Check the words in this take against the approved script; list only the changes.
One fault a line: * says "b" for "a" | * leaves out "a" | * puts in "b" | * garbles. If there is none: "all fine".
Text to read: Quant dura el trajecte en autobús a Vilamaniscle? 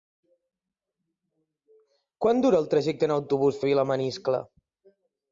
all fine